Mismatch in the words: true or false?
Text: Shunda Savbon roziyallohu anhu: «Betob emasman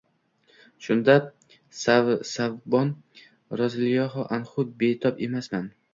false